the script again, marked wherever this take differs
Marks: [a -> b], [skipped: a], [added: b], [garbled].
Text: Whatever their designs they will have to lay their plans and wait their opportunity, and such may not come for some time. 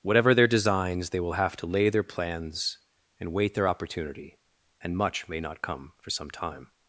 Whatever their designs they will have to lay their plans and wait their opportunity, and [such -> much] may not come for some time.